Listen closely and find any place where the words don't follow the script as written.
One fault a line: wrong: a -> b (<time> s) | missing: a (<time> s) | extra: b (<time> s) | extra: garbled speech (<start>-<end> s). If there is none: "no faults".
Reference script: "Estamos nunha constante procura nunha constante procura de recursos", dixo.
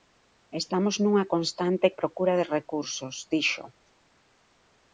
missing: nunha constante procura (2.3 s)